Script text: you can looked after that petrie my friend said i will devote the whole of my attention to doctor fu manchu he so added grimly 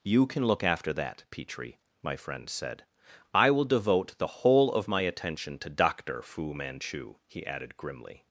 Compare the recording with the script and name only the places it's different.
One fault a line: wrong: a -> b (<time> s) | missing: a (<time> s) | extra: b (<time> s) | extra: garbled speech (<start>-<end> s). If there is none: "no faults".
wrong: looked -> look (0.5 s)
missing: so (7.5 s)